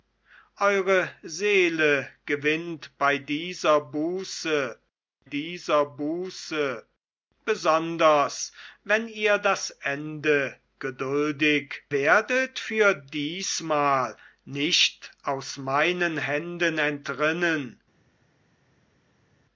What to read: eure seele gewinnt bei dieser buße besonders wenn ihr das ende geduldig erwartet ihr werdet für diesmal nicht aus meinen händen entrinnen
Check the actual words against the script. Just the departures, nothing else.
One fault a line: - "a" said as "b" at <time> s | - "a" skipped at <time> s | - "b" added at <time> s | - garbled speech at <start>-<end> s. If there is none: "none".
- "dieser buße" added at 5.2 s
- "erwartet ihr" skipped at 11.8 s